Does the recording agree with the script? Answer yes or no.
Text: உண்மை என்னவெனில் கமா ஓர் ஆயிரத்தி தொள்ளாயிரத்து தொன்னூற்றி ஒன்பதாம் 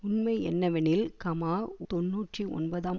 no